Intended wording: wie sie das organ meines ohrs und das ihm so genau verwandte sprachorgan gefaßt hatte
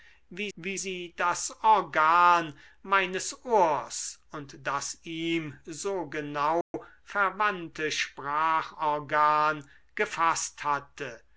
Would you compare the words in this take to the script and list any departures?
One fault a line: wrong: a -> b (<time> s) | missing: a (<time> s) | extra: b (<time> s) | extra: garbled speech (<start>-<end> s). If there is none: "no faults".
extra: wie (0.6 s)